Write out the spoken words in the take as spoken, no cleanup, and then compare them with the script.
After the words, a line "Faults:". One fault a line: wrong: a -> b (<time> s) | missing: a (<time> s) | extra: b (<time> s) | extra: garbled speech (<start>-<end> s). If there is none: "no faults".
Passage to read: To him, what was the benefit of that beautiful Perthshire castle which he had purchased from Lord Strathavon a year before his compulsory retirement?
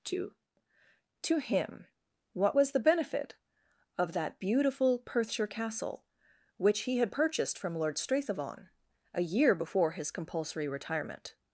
To to him, what was the benefit of that beautiful Perthshire castle which he had purchased from Lord Strathavon a year before his compulsory retirement?
Faults:
extra: to (1.2 s)